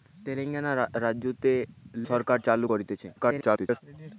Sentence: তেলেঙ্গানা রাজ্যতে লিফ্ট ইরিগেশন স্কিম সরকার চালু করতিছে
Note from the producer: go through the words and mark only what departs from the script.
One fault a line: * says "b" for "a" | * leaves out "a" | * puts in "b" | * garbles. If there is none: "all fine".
* leaves out "লিফ্ট ইরিগেশন স্কিম"
* garbles